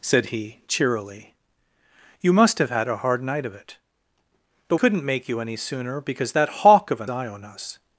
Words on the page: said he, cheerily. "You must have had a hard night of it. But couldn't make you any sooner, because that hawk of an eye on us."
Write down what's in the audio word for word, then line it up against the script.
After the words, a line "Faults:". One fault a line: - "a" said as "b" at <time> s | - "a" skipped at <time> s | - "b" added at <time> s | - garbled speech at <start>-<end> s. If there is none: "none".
said he, cheerily. "You must have had a hard night of it. But couldn't make you any sooner, because that hawk of an eye on us."
Faults:
none